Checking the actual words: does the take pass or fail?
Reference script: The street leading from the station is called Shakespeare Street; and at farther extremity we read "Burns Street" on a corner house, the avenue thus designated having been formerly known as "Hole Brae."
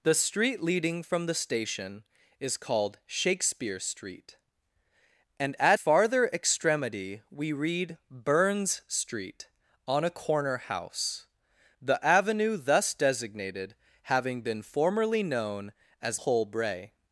pass